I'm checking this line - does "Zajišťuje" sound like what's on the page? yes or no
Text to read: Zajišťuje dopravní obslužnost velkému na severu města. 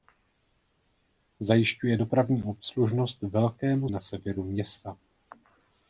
yes